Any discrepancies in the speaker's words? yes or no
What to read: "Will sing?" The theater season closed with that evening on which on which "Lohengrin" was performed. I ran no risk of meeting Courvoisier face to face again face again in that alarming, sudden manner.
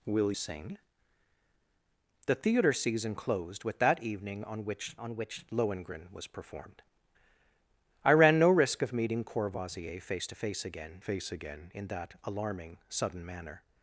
no